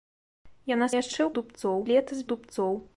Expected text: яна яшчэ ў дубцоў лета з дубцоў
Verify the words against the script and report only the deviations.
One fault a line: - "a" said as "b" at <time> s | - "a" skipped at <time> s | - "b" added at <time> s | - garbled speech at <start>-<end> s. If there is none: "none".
none